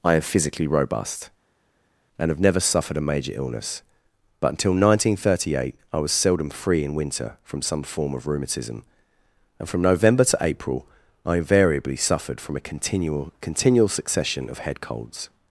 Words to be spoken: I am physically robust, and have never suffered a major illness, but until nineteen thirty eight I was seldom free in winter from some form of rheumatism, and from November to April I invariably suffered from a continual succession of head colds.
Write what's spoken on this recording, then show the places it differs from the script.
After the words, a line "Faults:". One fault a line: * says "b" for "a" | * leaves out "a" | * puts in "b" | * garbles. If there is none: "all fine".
I am physically robust, and have never suffered a major illness, but until nineteen thirty eight I was seldom free in winter from some form of rheumatism, and from November to April I invariably suffered from a continual continual succession of head colds.
Faults:
* puts in "continual"